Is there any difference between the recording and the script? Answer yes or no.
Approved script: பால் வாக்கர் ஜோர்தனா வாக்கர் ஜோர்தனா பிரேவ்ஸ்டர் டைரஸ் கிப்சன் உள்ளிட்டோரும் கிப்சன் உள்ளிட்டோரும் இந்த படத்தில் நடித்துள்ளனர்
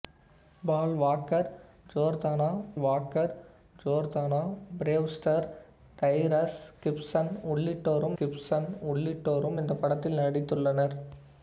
no